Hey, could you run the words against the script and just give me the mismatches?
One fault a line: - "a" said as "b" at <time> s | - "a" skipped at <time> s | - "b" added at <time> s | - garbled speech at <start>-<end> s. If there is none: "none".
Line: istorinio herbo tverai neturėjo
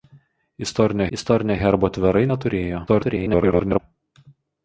- "istorinio" added at 1.2 s
- garbled speech at 2.9-3.8 s